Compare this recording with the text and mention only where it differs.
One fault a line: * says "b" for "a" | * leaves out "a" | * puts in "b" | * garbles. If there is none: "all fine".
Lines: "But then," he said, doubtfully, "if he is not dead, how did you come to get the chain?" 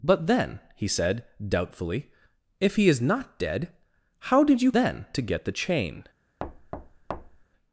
* says "then" for "come"